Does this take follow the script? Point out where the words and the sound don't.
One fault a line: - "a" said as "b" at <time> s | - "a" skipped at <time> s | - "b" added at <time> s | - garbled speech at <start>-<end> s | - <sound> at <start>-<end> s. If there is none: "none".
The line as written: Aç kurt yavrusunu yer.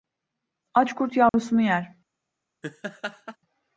- dropout at 1.3-1.3 s
- laugh at 2.6-3.4 s